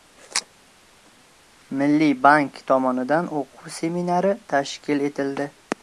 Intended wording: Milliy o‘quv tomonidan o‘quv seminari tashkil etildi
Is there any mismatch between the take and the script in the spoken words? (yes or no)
yes